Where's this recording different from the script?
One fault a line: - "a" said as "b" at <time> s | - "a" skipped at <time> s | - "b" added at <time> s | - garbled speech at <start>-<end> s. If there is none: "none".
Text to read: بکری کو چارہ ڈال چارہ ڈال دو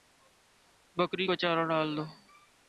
- "چارہ ڈال" skipped at 1.9 s